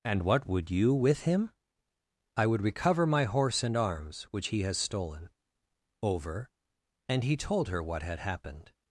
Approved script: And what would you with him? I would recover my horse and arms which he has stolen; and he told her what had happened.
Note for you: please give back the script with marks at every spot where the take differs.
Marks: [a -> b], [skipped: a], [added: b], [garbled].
And what would you with him? I would recover my horse and arms which he has stolen; [added: over] and he told her what had happened.